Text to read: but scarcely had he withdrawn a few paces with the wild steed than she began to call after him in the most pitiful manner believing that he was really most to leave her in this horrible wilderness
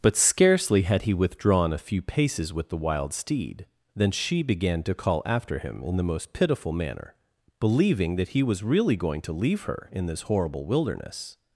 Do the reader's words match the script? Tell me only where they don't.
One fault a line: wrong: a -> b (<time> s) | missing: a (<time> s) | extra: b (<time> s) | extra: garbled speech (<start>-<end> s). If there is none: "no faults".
wrong: most -> going (8.9 s)